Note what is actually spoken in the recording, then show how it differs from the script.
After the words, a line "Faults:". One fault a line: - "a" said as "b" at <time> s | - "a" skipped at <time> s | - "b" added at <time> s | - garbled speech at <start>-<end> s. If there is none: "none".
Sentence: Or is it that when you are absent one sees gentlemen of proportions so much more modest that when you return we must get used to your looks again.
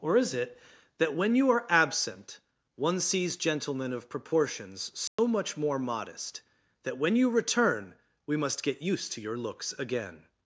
Or is it that when you are absent one sees gentlemen of proportions so much more modest that when you return we must get used to your looks again.
Faults:
none